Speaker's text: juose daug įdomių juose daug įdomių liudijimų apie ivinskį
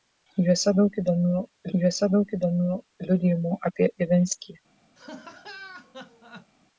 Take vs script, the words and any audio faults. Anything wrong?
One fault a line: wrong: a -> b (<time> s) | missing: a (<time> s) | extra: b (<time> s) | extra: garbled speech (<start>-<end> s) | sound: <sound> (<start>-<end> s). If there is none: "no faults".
sound: laugh (5.0-6.5 s)